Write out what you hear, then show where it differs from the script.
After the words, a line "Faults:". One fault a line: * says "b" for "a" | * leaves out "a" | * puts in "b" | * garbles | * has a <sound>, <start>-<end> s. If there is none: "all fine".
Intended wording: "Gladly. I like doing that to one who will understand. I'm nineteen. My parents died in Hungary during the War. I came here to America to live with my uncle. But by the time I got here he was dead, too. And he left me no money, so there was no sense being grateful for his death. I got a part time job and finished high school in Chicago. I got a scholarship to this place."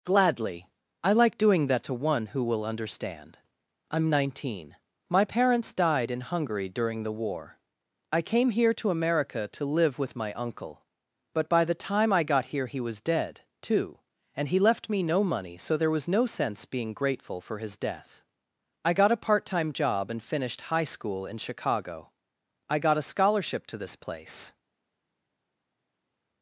"Gladly. I like doing that to one who will understand. I'm nineteen. My parents died in Hungary during the War. I came here to America to live with my uncle. But by the time I got here he was dead, too. And he left me no money, so there was no sense being grateful for his death. I got a part time job and finished high school in Chicago. I got a scholarship to this place."
Faults:
all fine